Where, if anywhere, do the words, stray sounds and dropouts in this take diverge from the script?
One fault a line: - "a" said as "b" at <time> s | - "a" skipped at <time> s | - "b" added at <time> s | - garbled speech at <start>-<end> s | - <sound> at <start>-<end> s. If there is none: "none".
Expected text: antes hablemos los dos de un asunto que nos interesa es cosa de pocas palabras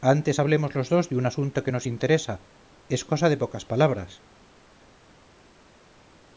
none